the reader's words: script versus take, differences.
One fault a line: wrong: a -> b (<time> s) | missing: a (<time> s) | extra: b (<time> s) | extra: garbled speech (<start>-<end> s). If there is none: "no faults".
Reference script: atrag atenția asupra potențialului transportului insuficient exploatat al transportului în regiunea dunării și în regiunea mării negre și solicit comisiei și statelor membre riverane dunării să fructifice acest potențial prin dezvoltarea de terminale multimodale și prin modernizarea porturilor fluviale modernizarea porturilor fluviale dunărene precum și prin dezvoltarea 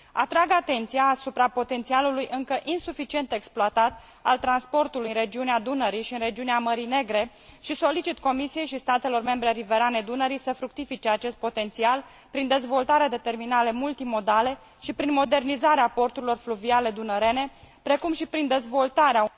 wrong: transportului -> încă (2.3 s)
missing: modernizarea porturilor fluviale (16.9 s)